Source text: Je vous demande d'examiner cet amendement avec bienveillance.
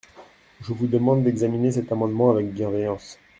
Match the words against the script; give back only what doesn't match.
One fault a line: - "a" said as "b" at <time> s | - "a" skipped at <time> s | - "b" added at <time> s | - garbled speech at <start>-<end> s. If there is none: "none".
none